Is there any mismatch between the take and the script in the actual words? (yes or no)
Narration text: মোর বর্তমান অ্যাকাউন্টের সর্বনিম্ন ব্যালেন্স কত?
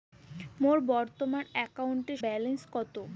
yes